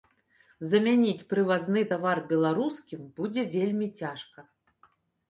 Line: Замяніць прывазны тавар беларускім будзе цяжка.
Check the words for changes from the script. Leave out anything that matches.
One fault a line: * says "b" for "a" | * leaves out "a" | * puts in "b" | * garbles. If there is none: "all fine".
* puts in "вельмі"